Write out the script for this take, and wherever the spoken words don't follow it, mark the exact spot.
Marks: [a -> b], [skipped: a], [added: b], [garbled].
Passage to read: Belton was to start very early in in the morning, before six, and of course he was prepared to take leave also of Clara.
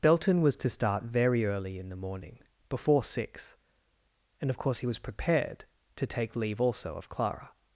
Belton was to start very early in [skipped: in] the morning, before six, and of course he was prepared to take leave also of Clara.